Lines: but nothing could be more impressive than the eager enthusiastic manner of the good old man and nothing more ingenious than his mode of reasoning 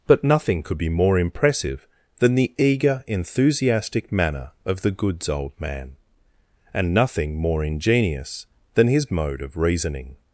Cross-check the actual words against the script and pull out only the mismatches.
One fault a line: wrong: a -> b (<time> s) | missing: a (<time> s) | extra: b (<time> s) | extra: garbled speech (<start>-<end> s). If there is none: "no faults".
wrong: good -> goods (4.9 s)